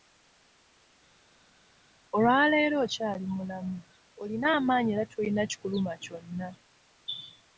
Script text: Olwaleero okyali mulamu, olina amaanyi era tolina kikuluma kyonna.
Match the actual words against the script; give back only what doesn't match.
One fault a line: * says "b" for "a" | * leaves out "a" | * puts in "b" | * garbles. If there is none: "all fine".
all fine